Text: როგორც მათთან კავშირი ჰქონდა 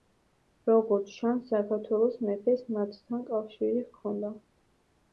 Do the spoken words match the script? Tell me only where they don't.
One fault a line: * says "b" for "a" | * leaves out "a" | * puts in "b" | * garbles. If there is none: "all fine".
* puts in "ჩანს საქართველოს მეფეს"